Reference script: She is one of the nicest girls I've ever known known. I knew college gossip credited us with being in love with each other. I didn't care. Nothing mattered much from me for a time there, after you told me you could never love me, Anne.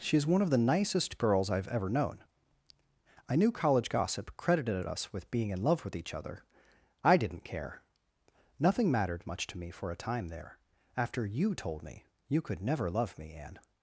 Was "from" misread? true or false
true